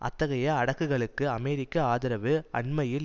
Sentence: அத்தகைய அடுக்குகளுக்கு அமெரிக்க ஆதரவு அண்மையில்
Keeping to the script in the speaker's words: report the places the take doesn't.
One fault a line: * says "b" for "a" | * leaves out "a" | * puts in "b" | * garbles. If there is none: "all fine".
all fine